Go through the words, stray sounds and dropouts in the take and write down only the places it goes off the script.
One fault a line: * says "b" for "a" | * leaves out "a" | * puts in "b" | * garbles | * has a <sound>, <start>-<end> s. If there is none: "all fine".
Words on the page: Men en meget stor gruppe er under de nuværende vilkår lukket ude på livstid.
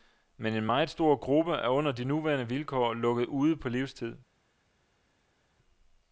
all fine